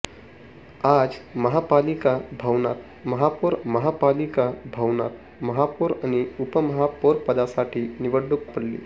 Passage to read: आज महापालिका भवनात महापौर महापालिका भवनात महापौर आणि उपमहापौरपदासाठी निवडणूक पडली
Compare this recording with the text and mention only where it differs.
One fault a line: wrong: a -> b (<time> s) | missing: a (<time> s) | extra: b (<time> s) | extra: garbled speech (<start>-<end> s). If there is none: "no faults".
no faults